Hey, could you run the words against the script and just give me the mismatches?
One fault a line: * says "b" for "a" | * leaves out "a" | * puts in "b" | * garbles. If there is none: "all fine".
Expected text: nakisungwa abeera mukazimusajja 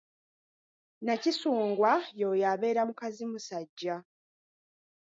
* puts in "y'oyo"